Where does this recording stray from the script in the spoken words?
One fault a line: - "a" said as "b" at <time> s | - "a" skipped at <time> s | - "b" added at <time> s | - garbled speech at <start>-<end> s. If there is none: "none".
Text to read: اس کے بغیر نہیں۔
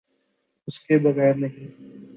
none